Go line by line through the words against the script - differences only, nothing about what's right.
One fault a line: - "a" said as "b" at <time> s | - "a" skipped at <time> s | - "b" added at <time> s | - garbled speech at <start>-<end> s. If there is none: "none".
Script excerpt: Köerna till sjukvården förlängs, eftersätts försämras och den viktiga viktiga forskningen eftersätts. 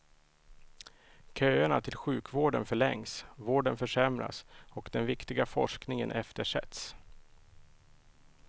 - "eftersätts" said as "vården" at 3.4 s
- "viktiga" skipped at 5.5 s